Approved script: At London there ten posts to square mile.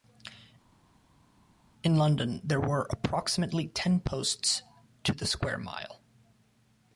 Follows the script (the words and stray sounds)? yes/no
no